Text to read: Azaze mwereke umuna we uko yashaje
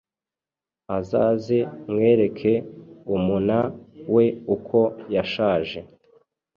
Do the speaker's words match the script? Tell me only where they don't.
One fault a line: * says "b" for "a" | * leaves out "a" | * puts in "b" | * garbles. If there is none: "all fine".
all fine